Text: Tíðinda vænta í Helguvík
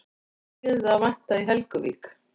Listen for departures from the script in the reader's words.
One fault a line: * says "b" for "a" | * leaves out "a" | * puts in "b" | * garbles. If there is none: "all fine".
* puts in "að"